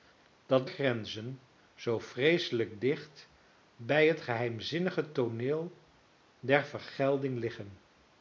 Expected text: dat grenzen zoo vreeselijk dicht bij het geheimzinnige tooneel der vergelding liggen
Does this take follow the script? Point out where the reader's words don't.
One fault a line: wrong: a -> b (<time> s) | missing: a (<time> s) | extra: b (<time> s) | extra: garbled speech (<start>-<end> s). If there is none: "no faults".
no faults